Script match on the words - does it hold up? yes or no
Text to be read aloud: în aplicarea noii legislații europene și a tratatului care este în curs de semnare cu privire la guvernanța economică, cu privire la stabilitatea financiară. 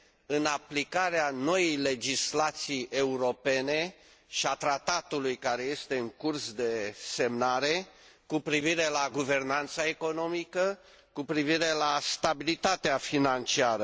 yes